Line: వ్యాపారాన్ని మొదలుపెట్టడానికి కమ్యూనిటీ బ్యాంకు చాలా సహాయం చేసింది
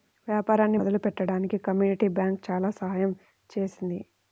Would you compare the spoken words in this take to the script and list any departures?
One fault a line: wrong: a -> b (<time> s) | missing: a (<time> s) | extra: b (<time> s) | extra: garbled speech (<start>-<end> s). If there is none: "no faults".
no faults